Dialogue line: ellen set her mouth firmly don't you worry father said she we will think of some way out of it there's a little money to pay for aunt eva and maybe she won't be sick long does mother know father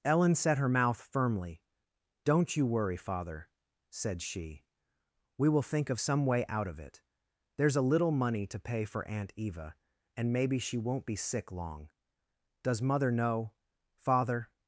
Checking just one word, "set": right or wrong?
right